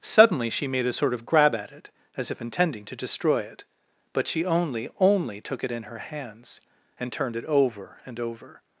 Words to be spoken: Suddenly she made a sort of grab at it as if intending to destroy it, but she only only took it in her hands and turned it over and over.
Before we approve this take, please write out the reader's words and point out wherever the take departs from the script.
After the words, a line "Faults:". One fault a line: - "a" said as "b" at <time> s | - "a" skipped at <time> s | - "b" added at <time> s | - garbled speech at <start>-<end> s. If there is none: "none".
Suddenly she made a sort of grab at it as if intending to destroy it, but she only only took it in her hands and turned it over and over.
Faults:
none